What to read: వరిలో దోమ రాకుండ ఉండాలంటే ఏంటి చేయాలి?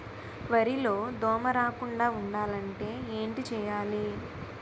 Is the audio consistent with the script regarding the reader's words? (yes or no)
yes